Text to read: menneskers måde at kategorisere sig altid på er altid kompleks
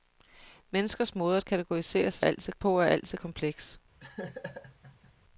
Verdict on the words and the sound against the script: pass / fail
fail